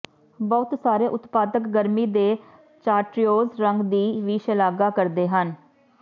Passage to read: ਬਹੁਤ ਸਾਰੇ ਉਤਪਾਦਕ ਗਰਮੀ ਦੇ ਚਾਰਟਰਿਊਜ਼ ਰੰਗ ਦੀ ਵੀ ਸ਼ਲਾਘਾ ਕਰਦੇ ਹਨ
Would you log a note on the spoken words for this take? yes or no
no